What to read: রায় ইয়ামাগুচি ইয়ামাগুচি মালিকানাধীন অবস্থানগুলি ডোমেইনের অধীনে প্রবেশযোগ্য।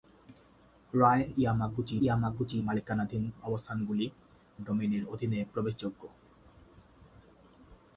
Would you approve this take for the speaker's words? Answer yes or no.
yes